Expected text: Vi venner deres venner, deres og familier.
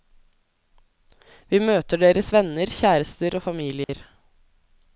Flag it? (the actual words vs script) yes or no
yes